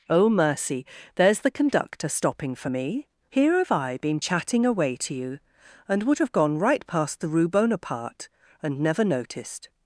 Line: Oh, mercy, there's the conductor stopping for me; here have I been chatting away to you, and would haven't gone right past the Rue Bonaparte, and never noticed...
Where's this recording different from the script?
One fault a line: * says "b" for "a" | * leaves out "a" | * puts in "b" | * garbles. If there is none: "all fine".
* says "have" for "haven't"